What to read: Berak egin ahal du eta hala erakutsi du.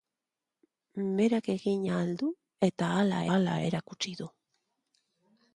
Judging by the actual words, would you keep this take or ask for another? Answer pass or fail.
fail